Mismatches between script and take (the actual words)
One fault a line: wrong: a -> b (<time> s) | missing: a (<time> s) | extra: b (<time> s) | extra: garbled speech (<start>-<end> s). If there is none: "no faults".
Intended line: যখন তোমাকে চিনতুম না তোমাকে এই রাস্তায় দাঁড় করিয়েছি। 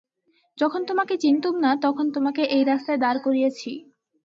extra: তখন (1.9 s)